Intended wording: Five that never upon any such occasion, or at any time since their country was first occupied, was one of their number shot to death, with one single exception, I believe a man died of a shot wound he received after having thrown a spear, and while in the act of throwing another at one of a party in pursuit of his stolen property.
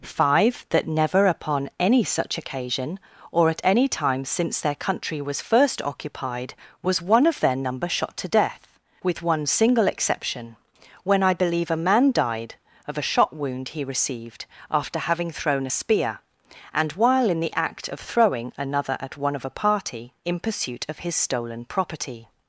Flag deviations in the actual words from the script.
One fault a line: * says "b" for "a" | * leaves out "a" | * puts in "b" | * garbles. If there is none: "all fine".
* puts in "when"